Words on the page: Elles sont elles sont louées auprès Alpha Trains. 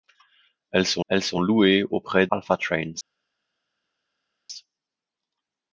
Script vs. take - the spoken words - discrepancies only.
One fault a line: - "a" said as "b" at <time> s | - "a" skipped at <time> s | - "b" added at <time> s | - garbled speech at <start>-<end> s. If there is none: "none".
none